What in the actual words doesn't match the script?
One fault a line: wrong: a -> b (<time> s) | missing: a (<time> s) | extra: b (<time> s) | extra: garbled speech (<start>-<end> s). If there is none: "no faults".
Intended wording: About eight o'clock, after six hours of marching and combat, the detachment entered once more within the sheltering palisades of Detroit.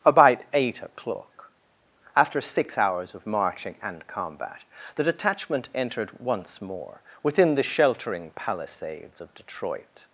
no faults